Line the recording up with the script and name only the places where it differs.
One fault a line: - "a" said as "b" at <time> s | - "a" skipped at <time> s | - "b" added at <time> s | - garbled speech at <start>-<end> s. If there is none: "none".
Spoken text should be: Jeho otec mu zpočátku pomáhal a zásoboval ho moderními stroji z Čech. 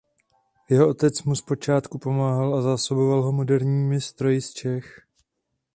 none